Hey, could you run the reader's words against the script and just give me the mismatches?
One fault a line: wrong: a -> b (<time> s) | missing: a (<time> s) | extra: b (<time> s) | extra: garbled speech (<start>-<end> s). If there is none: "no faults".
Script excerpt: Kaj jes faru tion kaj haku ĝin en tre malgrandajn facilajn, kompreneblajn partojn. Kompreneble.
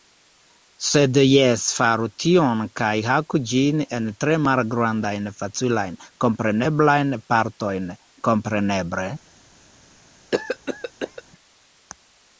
wrong: Kaj -> Sed (0.8 s)